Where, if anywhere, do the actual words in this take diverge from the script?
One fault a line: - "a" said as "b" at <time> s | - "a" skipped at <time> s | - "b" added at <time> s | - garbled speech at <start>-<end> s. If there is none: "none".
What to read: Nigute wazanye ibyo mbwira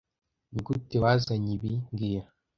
- "ibyo" said as "ibi" at 1.6 s